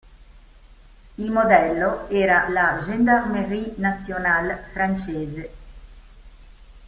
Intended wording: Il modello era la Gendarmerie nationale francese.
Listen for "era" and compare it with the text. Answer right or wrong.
right